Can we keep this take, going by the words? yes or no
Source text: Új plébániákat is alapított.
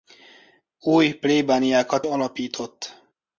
no